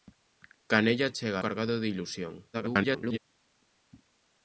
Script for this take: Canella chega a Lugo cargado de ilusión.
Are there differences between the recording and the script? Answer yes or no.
yes